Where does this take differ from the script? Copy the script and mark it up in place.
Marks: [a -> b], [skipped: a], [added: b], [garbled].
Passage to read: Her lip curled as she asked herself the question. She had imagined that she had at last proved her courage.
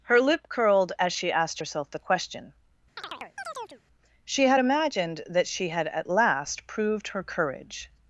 Her lip curled as she asked herself the question. She had imagined that she had at last proved her courage.